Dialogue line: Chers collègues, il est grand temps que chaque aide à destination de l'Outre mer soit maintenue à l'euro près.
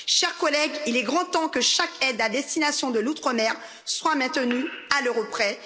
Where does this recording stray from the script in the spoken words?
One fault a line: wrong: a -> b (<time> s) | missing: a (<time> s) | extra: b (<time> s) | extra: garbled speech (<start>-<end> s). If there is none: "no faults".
no faults